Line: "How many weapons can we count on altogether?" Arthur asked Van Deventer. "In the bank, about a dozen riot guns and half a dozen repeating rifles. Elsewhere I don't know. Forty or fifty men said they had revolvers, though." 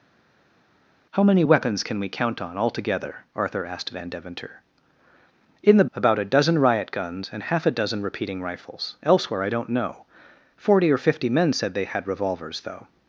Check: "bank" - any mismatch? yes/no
yes